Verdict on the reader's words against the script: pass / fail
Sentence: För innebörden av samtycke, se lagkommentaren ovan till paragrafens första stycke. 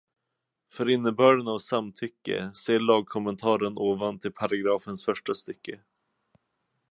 pass